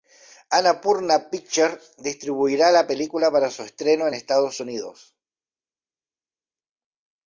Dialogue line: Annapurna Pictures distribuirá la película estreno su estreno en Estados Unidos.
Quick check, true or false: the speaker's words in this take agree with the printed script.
false